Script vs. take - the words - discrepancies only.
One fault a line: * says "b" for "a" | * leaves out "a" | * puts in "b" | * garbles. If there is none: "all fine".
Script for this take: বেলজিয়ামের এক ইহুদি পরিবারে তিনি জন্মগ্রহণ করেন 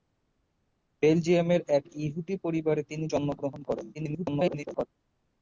* garbles